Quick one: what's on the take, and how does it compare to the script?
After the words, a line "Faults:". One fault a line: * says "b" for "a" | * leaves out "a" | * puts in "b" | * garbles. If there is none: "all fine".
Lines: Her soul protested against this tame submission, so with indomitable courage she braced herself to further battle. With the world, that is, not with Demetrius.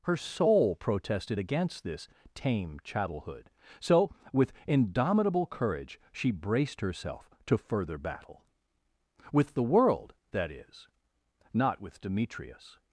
Her soul protested against this tame chattelhood, so with indomitable courage she braced herself to further battle. With the world, that is, not with Demetrius.
Faults:
* says "chattelhood" for "submission"